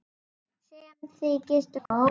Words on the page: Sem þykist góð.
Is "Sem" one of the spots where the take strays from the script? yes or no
no